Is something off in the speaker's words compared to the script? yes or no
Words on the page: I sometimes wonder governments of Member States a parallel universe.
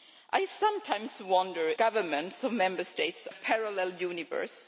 no